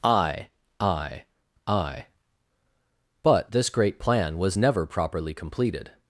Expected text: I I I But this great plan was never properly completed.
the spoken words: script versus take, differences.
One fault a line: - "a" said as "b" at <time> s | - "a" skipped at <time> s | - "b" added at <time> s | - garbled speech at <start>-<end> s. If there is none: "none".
none